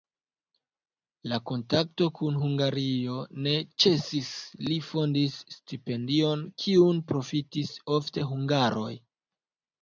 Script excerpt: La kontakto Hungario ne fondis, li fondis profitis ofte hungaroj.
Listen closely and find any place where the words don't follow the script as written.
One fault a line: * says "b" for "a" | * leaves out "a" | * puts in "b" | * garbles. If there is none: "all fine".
* puts in "kun"
* says "ĉesis" for "fondis"
* puts in "stipendion kiun"